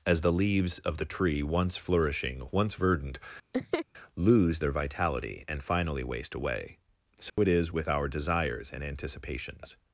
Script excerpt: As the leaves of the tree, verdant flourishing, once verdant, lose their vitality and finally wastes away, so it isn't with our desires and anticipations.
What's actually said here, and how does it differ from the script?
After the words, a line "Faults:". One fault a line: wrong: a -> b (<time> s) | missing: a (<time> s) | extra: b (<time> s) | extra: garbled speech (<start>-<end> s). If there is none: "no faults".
As the leaves of the tree, once flourishing, once verdant, lose their vitality and finally waste away, so it is with our desires and anticipations.
Faults:
wrong: verdant -> once (1.4 s)
wrong: wastes -> waste (6.0 s)
wrong: isn't -> is (7.5 s)